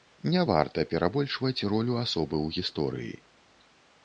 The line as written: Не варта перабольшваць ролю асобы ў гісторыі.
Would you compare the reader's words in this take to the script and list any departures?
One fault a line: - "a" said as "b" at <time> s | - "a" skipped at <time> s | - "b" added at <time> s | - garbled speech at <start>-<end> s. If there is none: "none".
none